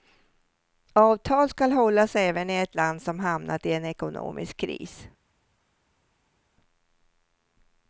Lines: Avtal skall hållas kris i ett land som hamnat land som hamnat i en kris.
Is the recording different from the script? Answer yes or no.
yes